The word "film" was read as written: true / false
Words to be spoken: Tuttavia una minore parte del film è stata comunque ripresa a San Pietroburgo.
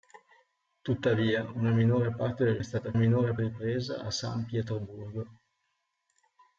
false